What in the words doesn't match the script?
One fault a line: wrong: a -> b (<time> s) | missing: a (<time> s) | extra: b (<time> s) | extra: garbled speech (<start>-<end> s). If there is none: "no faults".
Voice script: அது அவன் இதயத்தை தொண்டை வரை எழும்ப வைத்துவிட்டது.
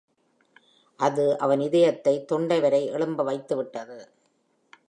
no faults